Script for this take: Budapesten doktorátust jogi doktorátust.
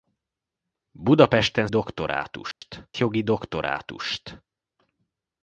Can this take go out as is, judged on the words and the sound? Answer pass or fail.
fail